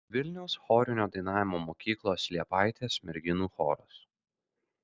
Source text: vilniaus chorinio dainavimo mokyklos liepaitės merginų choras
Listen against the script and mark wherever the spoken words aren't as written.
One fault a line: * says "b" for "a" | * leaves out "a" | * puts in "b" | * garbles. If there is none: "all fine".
all fine